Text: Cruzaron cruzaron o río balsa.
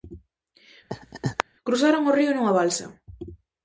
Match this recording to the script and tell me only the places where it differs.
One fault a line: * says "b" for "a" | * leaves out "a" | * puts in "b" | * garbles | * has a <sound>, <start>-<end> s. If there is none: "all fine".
* has a laugh, 0.9-1.4 s
* leaves out "cruzaron"
* puts in "nunha"